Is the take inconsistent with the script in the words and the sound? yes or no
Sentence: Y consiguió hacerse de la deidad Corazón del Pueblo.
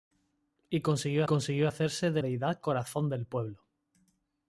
yes